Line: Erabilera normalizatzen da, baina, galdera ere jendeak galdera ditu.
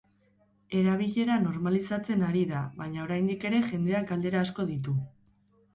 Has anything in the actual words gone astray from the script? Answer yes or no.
yes